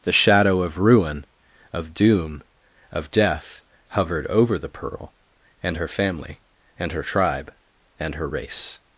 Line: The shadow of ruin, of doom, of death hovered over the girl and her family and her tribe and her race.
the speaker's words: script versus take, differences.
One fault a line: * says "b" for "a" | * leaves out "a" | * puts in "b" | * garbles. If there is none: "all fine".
* says "pearl" for "girl"